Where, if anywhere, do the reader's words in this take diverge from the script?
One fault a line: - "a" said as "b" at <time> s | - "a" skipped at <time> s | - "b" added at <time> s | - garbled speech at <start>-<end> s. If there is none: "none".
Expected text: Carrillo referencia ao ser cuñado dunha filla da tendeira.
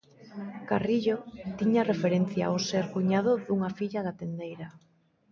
- "tiña" added at 1.6 s